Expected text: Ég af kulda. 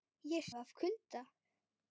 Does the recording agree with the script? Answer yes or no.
yes